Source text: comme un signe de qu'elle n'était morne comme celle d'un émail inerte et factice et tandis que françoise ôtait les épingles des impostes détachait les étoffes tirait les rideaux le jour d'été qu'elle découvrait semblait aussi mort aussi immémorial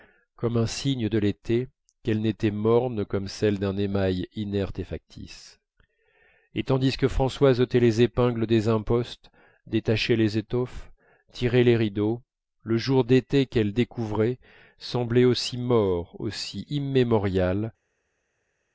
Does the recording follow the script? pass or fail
fail